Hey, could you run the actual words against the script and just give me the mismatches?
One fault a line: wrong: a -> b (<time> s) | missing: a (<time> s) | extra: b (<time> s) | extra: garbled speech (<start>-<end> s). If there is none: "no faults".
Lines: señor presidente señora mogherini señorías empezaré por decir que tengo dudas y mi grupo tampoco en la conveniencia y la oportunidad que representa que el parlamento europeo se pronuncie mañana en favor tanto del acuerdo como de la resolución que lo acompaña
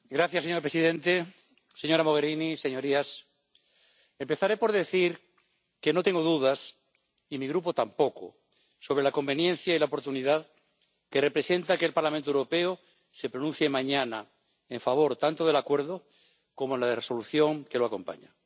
extra: no (5.9 s)
wrong: en -> sobre (8.8 s)